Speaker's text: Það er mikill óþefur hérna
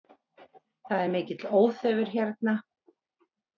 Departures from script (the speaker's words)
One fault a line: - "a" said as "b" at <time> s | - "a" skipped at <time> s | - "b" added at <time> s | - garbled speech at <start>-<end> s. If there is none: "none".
none